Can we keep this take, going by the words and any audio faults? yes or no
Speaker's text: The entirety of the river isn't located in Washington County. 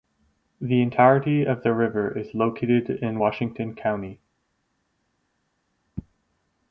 no